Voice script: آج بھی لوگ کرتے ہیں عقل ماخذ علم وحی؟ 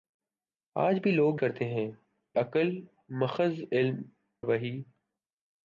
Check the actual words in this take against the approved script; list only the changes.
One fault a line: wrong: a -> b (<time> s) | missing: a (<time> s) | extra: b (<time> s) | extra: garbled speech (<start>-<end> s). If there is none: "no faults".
no faults